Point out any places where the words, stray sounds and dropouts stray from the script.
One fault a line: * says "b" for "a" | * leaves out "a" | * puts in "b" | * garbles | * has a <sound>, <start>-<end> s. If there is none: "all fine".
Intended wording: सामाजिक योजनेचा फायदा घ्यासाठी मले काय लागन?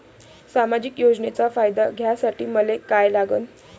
all fine